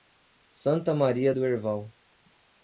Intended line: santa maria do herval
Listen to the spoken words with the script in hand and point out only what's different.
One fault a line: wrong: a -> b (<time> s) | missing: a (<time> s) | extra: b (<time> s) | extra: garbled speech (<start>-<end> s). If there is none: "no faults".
no faults